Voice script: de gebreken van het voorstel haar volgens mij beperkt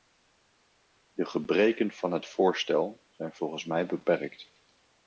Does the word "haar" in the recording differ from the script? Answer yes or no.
yes